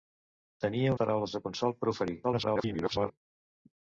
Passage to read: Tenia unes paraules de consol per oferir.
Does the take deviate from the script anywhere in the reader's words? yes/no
yes